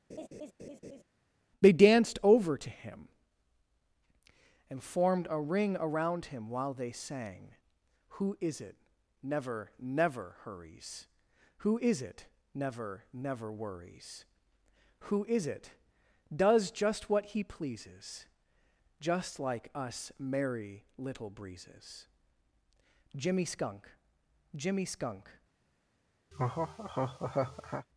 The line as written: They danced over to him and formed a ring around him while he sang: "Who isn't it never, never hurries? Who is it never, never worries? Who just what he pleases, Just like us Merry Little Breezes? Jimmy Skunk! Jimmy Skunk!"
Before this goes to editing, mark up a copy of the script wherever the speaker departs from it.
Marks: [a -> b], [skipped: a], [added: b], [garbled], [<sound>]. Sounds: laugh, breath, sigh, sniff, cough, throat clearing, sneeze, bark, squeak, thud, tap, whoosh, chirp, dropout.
[laugh] They danced over to him and formed a ring around him while [he -> they] sang: "Who [isn't -> is] it never, never hurries? Who is it never, never worries? Who [added: is it does] just what he pleases, Just like us Merry Little Breezes? Jimmy Skunk! Jimmy Skunk!" [laugh]